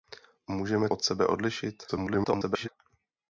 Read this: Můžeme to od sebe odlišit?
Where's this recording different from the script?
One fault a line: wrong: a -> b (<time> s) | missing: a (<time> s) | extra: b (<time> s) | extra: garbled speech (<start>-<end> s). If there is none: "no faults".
missing: to (0.9 s)
extra: garbled speech (1.9-2.7 s)